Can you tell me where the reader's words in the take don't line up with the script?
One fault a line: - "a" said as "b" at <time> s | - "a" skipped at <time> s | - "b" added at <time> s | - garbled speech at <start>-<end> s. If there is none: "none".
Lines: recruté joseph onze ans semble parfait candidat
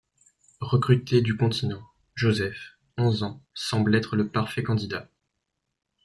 - "du continent" added at 1.2 s
- "être le" added at 4.0 s